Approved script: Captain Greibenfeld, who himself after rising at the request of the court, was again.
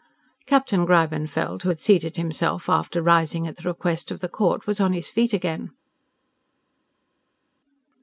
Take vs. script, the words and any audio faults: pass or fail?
fail